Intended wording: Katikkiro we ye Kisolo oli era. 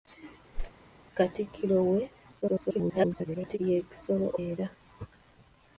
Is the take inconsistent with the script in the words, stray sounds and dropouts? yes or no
yes